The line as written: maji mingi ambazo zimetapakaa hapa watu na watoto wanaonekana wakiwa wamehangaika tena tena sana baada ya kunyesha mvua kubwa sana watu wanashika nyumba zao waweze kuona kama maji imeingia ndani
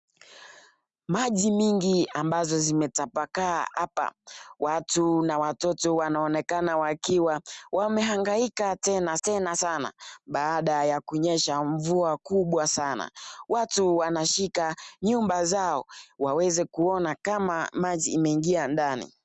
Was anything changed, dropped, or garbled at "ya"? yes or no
no